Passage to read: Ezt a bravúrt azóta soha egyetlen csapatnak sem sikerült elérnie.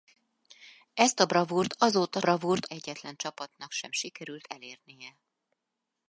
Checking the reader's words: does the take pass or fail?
fail